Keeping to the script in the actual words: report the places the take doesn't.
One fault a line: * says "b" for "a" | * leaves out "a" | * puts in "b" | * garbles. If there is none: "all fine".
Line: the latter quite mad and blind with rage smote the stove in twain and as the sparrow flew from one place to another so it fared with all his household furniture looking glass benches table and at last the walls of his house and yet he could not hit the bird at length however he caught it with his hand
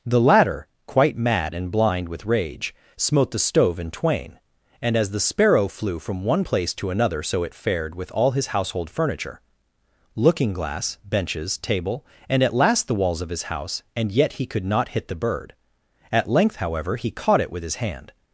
all fine